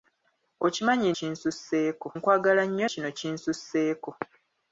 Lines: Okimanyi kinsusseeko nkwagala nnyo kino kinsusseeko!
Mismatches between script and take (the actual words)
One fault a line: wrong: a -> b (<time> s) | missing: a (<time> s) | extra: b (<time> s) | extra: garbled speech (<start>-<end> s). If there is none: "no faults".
no faults